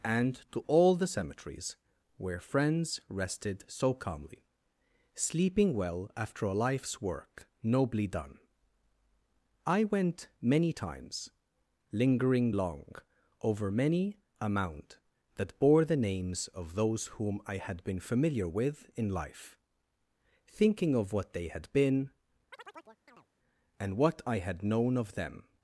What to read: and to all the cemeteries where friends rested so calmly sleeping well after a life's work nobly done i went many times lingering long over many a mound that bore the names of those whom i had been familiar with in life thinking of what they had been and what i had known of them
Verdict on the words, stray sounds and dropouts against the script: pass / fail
fail